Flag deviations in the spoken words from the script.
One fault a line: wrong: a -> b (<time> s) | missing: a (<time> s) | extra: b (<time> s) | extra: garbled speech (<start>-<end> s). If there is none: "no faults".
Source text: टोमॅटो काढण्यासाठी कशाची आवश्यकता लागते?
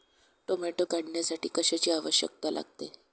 no faults